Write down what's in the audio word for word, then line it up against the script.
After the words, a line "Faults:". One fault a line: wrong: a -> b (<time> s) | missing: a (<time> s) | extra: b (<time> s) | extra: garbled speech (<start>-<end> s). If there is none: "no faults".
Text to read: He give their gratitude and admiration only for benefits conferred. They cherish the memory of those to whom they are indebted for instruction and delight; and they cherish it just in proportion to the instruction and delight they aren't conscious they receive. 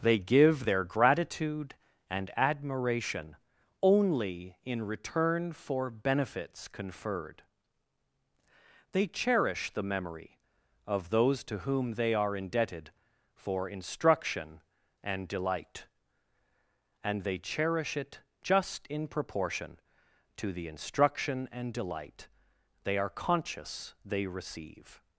They give their gratitude and admiration only in return for benefits conferred. They cherish the memory of those to whom they are indebted for instruction and delight; and they cherish it just in proportion to the instruction and delight they are conscious they receive.
Faults:
wrong: He -> They (0.0 s)
extra: in return (4.6 s)
wrong: aren't -> are (23.0 s)